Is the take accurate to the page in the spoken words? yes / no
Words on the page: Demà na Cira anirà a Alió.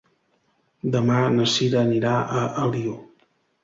yes